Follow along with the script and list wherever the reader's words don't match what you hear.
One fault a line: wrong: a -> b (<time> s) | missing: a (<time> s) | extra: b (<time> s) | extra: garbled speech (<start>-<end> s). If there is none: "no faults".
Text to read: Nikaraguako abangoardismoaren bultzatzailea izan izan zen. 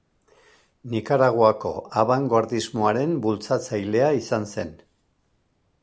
missing: izan (4.5 s)